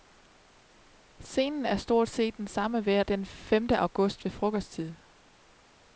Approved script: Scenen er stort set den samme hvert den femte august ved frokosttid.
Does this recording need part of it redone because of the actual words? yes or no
no